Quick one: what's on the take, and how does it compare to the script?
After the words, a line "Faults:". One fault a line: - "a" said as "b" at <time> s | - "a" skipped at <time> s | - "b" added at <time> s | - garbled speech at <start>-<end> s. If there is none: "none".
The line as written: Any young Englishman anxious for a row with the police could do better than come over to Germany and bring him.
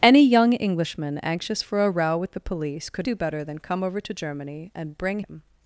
Any young Englishman anxious for a row with the police could do better than come over to Germany and bring him.
Faults:
none